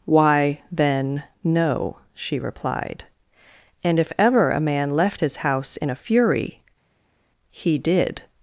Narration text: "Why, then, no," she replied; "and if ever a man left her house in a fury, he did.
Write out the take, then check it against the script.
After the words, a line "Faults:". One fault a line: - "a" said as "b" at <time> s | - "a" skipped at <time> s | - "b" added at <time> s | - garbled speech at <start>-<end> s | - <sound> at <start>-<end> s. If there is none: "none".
"Why, then, no," she replied; "and if ever a man left his house in a fury, he did.
Faults:
- "her" said as "his" at 5.2 s